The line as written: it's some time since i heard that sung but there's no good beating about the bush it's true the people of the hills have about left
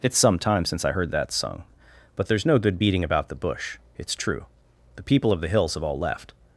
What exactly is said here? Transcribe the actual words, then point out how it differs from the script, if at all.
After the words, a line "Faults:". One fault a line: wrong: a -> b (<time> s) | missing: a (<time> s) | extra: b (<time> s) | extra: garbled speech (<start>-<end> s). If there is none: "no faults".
it's some time since i heard that sung but there's no good beating about the bush it's true the people of the hills have all left
Faults:
wrong: about -> all (5.8 s)